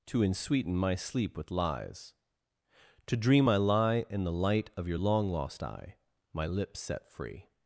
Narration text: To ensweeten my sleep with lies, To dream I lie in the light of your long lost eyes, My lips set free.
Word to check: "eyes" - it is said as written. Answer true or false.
false